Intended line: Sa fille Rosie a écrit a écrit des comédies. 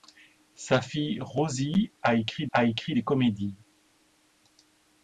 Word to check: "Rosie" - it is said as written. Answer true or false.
true